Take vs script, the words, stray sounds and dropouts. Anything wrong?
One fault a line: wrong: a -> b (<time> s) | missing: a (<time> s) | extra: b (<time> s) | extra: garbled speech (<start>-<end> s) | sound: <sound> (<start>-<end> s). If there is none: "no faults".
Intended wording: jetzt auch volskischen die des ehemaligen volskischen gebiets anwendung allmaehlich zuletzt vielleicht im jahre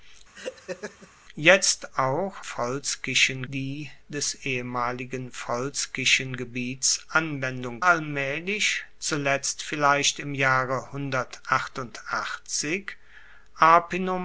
sound: laugh (0.3-1.1 s)